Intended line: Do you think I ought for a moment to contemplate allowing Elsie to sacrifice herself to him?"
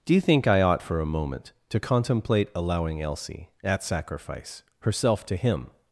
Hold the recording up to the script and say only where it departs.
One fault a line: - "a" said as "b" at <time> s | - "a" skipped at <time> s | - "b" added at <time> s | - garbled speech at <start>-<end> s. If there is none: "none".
- "to" said as "at" at 3.6 s